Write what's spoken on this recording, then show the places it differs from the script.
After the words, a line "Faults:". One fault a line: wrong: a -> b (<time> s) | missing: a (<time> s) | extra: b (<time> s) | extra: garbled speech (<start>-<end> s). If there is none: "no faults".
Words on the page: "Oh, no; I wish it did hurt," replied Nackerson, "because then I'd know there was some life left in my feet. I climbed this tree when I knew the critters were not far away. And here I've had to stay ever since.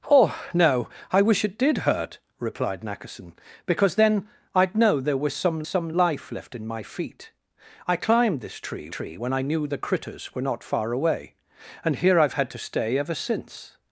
"Oh, no; I wish it did hurt," replied Nackerson, "because then I'd know there was some some life left in my feet. I climbed this tree tree when I knew the critters were not far away. And here I've had to stay ever since.
Faults:
extra: some (5.7 s)
extra: tree (8.9 s)